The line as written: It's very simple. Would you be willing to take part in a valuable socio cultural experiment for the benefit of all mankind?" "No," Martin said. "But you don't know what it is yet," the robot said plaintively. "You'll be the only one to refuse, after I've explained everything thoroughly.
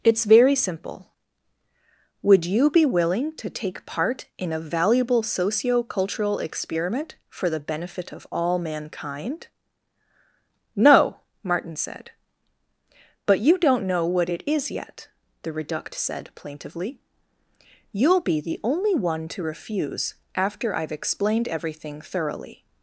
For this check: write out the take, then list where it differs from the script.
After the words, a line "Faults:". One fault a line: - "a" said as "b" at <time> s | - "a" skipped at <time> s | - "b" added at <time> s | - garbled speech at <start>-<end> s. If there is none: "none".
It's very simple. Would you be willing to take part in a valuable socio cultural experiment for the benefit of all mankind?" "No," Martin said. "But you don't know what it is yet," the reduct said plaintively. "You'll be the only one to refuse, after I've explained everything thoroughly.
Faults:
- "robot" said as "reduct" at 15.5 s